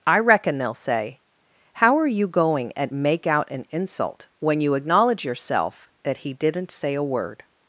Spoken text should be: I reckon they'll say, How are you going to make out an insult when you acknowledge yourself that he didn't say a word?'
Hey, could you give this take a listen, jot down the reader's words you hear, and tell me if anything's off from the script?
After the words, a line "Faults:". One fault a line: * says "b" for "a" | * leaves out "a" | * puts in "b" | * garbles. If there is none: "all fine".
I reckon they'll say, How are you going at make out an insult when you acknowledge yourself that he didn't say a word?'
Faults:
* says "at" for "to"